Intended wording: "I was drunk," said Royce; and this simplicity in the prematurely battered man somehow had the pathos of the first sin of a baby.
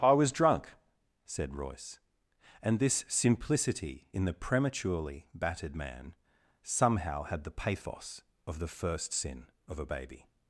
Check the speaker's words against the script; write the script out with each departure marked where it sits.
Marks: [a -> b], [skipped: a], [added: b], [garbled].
"I was drunk," said Royce; and this simplicity in the prematurely battered man somehow had the pathos of the first sin of a baby.